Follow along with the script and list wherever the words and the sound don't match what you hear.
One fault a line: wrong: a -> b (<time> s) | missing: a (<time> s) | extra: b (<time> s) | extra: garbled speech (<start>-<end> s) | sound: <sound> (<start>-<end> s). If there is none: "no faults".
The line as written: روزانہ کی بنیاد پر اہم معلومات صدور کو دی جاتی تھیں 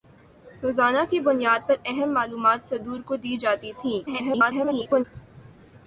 extra: garbled speech (4.1-5.0 s)